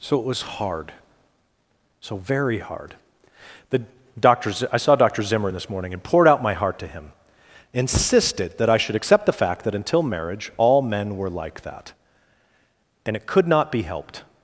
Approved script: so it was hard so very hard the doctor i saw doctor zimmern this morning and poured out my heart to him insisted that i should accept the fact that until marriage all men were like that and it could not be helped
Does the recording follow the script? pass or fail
pass